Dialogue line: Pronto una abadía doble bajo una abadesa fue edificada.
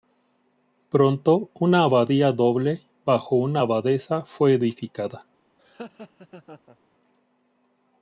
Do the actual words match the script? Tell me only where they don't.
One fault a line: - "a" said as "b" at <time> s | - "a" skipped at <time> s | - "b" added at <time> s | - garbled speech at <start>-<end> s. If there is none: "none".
none